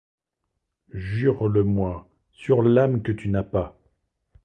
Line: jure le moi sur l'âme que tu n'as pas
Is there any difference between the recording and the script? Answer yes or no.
no